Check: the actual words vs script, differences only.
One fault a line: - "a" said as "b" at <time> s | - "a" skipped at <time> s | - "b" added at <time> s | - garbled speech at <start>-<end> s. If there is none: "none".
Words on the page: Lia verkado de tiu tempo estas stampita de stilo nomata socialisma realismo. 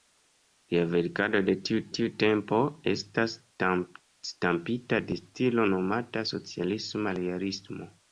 - "tiu" added at 2.0 s